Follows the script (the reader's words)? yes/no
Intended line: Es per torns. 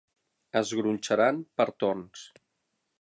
no